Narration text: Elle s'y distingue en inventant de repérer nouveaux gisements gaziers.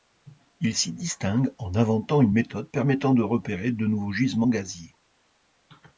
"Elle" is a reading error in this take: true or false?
true